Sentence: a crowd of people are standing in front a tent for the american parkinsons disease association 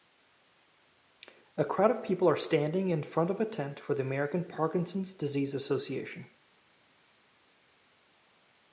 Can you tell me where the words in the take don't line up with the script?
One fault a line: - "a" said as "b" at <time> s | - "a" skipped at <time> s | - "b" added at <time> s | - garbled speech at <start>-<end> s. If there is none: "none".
- "of" added at 3.3 s